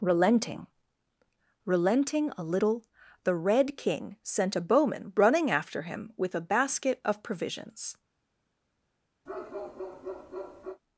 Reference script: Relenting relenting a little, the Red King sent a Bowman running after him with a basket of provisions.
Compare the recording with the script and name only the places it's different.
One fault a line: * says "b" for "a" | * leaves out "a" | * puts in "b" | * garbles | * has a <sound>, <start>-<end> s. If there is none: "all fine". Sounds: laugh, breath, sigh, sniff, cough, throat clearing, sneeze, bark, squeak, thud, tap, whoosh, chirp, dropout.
* has a bark, 9.3-10.8 s